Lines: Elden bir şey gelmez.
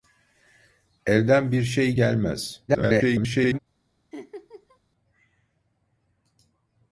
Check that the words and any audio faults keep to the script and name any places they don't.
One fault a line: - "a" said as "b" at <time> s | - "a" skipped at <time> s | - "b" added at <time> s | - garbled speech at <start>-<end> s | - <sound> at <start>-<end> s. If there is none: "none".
- garbled speech at 2.7-3.6 s
- laugh at 4.1-4.8 s